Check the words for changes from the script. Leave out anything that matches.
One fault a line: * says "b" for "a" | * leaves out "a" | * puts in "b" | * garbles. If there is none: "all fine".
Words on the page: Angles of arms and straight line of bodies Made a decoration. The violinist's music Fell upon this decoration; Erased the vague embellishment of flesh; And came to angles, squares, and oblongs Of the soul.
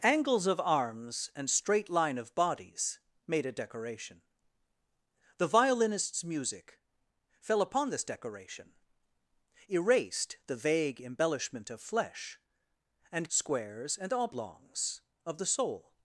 * leaves out "came to angles"